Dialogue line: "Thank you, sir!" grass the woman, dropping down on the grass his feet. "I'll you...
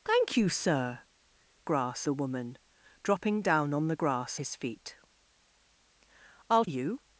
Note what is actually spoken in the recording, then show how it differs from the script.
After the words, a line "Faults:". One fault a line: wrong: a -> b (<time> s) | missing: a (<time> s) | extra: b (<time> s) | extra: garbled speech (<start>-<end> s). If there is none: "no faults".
"Thank you, sir!" grass the woman, dropping down on the grass his feet. "I'll you...
Faults:
no faults